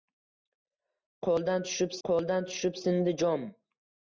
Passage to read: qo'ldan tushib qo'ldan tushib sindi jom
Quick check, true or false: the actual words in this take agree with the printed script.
true